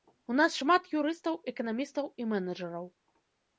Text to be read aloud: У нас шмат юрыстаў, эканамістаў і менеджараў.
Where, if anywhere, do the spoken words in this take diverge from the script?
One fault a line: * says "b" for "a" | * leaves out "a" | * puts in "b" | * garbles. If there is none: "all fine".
all fine